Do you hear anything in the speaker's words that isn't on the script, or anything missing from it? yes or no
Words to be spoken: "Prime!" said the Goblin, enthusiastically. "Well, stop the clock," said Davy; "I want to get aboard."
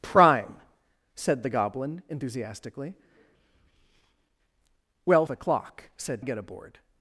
yes